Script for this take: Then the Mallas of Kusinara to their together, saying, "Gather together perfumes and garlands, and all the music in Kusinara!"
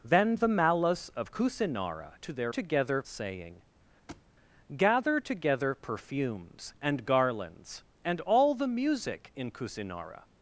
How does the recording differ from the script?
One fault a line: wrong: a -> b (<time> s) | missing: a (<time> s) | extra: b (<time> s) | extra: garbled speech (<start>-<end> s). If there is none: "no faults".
no faults